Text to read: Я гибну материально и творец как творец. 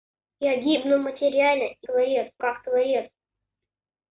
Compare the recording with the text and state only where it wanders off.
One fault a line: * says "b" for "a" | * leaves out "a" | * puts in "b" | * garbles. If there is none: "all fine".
all fine